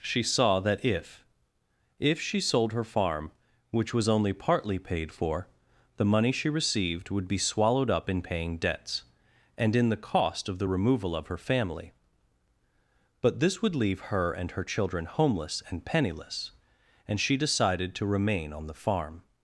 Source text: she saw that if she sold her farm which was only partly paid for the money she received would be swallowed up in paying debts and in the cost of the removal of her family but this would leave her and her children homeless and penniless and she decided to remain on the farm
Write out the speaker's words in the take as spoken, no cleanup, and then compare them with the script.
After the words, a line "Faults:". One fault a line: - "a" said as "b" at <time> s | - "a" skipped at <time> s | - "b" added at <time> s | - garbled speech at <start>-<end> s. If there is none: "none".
she saw that if if she sold her farm which was only partly paid for the money she received would be swallowed up in paying debts and in the cost of the removal of her family but this would leave her and her children homeless and penniless and she decided to remain on the farm
Faults:
- "if" added at 2.0 s